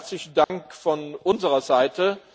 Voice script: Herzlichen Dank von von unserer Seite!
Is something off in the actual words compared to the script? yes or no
yes